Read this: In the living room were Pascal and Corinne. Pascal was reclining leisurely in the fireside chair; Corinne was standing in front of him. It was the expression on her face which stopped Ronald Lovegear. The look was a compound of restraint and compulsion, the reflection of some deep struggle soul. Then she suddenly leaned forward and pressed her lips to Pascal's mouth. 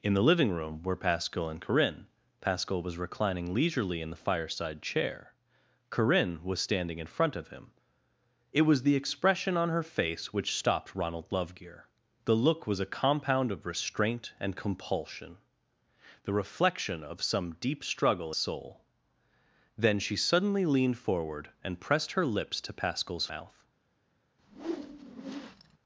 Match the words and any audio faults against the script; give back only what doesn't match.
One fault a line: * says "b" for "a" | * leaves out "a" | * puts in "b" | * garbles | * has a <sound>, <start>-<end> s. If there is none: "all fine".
* has a whoosh, 24.4-25.8 s